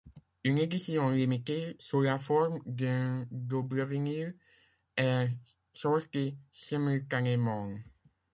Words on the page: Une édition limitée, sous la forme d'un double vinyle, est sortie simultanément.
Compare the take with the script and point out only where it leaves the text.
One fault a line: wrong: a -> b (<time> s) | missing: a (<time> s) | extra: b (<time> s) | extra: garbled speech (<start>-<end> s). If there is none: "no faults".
no faults